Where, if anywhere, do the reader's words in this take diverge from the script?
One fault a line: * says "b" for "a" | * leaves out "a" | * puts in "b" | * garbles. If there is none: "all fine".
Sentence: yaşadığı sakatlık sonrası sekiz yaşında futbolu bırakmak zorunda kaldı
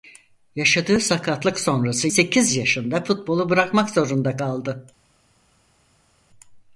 all fine